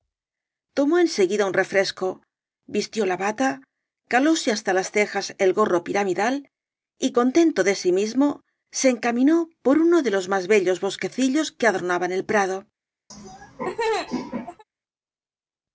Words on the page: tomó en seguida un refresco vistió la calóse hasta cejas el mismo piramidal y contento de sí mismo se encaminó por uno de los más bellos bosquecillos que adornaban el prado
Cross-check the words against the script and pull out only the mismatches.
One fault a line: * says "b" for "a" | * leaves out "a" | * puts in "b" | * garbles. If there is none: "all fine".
* puts in "bata"
* puts in "las"
* says "gorro" for "mismo"